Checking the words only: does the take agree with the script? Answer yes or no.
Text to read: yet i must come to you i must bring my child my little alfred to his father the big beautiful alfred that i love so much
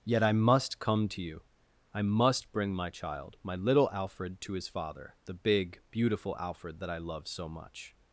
yes